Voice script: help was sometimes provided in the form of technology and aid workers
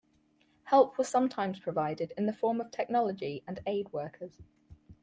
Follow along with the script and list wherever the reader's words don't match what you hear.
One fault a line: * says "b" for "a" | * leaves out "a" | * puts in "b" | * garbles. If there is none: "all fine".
all fine